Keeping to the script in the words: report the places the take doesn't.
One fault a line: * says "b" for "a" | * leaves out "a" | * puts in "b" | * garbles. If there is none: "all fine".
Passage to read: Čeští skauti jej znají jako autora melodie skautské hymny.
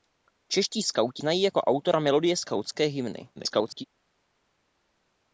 * leaves out "jej"
* garbles